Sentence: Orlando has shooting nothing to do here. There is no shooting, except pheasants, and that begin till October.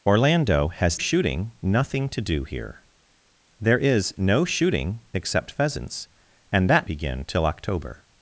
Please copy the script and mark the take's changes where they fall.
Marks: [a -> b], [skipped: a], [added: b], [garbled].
Orlando has shooting nothing to do here. There is no shooting, except pheasants, and that begin till October.